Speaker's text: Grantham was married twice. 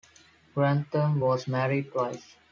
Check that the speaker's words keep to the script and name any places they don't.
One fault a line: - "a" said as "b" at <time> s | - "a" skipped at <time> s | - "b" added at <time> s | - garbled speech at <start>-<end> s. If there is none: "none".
none